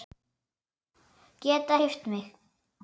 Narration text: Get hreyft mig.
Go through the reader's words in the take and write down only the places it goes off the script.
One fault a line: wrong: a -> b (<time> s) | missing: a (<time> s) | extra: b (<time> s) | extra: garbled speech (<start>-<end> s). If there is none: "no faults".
no faults